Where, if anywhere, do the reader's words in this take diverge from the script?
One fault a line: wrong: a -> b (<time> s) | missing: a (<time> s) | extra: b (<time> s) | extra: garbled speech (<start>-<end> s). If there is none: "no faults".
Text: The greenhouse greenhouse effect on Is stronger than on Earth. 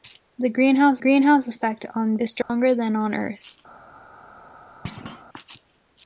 no faults